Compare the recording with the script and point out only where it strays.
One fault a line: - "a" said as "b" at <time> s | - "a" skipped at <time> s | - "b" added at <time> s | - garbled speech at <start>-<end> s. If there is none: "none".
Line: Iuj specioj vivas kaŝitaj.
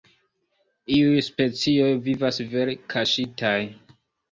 - "vere" added at 2.5 s